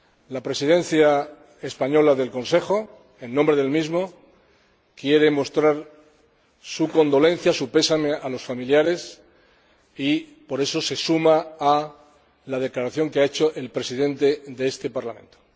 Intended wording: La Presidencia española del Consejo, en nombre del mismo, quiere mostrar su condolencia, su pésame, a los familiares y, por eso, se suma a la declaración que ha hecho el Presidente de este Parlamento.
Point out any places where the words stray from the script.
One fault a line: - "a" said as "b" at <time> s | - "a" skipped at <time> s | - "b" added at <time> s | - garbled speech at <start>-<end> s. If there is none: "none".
none